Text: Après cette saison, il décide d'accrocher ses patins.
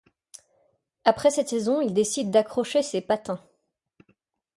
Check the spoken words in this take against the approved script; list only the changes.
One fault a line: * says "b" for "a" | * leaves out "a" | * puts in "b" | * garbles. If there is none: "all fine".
all fine